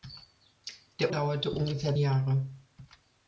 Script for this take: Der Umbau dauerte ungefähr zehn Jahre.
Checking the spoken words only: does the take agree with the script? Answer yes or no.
no